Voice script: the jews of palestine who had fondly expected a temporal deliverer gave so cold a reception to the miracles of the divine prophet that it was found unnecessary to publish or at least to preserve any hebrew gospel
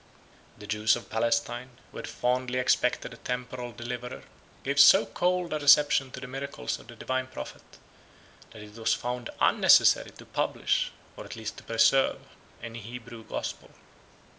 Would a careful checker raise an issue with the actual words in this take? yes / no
no